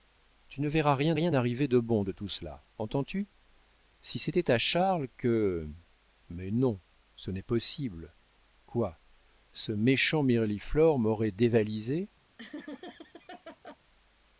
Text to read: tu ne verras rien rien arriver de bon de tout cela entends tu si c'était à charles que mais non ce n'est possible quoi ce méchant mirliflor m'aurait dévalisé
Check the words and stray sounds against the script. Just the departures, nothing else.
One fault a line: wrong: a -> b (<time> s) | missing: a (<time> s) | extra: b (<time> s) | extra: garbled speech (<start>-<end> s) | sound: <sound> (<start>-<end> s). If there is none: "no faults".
sound: laugh (12.4-13.8 s)